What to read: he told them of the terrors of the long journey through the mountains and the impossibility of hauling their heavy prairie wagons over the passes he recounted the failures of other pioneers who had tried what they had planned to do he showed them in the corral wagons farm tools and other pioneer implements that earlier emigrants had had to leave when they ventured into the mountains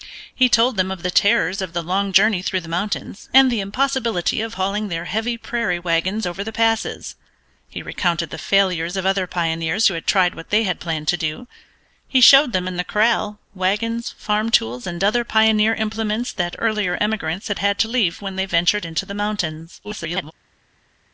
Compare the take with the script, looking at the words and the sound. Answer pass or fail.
fail